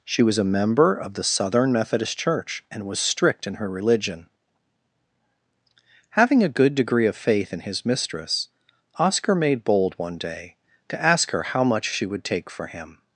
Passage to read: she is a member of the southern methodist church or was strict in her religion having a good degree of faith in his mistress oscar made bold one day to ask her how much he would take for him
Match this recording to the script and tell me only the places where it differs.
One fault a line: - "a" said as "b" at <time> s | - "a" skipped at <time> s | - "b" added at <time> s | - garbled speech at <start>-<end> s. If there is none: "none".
- "is" said as "was" at 0.2 s
- "or" said as "and" at 2.7 s
- "he" said as "she" at 11.9 s